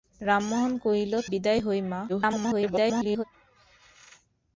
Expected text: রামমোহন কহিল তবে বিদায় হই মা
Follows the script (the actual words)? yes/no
no